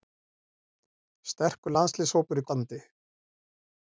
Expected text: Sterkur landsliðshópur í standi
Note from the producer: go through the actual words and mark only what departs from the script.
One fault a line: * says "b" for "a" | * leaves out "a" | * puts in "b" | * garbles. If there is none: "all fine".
all fine